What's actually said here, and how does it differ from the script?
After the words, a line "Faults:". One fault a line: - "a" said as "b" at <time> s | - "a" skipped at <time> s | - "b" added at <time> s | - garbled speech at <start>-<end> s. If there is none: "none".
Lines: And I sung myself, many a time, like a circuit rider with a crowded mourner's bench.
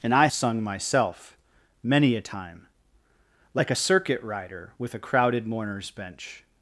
And I sung myself, many a time, like a circuit rider with a crowded mourner's bench.
Faults:
none